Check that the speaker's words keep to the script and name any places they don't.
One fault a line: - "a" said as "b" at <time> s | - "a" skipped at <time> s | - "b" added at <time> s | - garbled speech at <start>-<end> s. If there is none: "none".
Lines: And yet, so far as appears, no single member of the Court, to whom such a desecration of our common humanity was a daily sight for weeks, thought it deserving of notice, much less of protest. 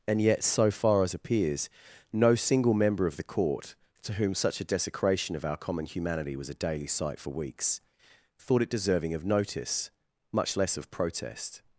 none